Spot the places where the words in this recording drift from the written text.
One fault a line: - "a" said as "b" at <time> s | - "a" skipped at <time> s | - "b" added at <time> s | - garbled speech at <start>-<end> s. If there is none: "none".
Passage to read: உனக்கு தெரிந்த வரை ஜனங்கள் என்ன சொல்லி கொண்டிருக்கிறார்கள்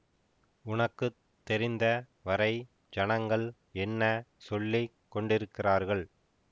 none